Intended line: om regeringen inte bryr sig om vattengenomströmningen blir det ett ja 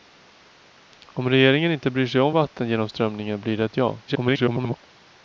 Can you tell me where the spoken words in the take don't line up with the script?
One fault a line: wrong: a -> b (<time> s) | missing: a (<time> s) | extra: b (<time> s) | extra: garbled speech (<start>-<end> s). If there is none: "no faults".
extra: garbled speech (4.1-4.9 s)